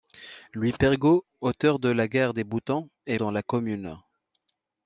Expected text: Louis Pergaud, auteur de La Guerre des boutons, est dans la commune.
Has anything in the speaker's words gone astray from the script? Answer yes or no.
no